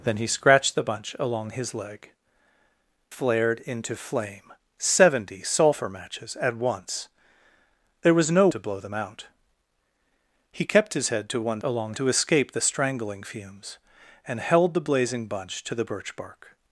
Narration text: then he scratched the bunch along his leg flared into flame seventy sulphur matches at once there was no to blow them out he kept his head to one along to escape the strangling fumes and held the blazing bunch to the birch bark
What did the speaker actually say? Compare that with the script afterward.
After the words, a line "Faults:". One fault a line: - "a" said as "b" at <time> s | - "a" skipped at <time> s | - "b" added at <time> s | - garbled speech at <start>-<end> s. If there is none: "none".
then he scratched the bunch along his leg flared into flame seventy sulphur matches at once there was no to blow them out he kept his head to one along to escape the strangling fumes and held the blazing bunch to the birch bark
Faults:
none